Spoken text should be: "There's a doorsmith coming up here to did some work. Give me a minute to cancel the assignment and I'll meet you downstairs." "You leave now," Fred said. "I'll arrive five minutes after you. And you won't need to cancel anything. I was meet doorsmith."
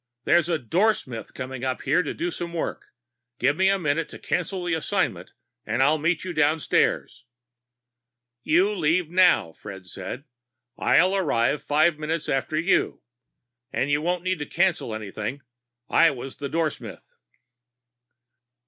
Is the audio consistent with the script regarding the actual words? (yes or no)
no